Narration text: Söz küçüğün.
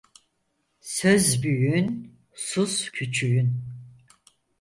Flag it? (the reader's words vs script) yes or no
yes